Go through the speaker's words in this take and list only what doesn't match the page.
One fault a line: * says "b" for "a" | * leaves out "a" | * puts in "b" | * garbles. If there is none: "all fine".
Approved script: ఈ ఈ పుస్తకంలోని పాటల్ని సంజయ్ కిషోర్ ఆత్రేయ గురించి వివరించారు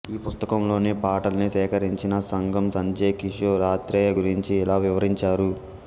* leaves out "ఈ"
* puts in "సేకరించిన సంగమ్"
* puts in "ఇలా"